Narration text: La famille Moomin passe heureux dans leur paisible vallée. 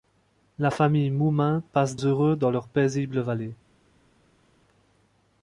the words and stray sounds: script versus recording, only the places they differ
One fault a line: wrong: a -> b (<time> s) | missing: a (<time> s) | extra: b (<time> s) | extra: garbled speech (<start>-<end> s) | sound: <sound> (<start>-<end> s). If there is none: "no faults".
no faults